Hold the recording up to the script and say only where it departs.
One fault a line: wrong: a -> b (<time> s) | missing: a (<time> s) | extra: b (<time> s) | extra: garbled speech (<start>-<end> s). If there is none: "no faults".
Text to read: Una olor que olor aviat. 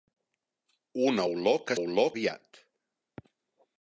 no faults